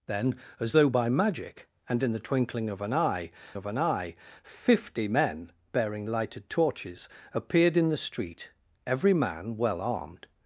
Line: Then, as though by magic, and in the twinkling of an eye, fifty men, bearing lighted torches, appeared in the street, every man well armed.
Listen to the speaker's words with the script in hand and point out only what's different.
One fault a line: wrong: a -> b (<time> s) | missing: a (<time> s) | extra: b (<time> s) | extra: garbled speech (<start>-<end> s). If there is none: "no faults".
extra: of an eye (3.5 s)